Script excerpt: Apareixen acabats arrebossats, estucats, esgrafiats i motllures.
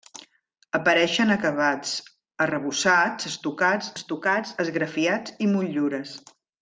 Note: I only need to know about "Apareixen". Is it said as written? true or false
true